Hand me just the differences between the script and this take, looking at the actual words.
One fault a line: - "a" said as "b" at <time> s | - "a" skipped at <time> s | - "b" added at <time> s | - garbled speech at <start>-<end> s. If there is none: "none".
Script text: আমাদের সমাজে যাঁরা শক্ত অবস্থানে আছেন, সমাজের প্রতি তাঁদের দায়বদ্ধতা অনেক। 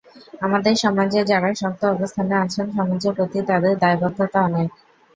none